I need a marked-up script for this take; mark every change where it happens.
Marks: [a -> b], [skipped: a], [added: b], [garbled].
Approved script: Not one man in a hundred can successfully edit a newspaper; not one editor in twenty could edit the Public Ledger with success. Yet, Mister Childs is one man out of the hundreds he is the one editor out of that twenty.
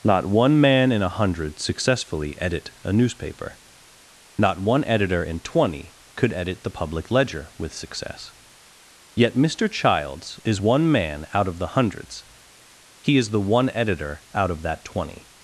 Not one man in a hundred [skipped: can] successfully edit a newspaper; not one editor in twenty could edit the Public Ledger with success. Yet, Mister Childs is one man out of the hundreds he is the one editor out of that twenty.